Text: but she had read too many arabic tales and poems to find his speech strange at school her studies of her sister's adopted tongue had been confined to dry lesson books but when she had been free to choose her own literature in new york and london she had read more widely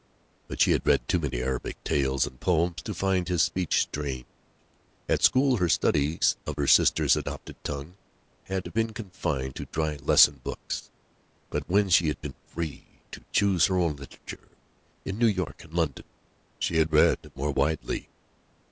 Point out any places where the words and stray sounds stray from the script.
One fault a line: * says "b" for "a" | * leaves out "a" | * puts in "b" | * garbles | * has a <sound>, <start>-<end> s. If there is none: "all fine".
all fine